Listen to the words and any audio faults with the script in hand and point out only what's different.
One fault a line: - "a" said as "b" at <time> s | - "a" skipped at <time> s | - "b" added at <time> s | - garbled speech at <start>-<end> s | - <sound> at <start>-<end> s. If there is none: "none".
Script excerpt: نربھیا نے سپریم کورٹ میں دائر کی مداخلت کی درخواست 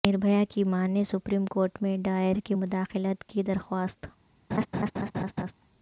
- "کی ماں" added at 0.5 s
- laugh at 4.5-5.5 s